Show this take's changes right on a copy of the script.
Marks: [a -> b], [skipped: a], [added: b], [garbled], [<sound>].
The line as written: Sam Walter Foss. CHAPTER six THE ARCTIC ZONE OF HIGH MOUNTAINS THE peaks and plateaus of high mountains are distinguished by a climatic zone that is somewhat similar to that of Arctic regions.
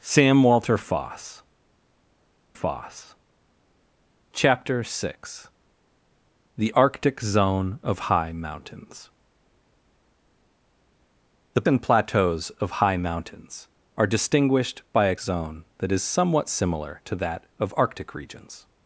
Sam Walter Foss. [added: Foss] CHAPTER six THE ARCTIC ZONE OF HIGH MOUNTAINS THE [skipped: peaks] and plateaus of high mountains are distinguished by a [skipped: climatic] zone that is somewhat similar to that of Arctic regions.